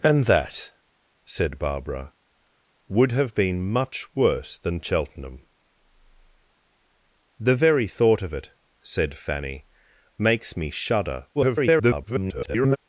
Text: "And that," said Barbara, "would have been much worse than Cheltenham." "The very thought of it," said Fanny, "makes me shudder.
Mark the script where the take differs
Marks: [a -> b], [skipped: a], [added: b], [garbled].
"And that," said Barbara, "would have been much worse than Cheltenham." "The very thought of it," said Fanny, "makes me shudder. [garbled]